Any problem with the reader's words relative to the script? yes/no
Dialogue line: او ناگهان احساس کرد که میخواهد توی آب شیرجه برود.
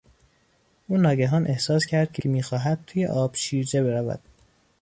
yes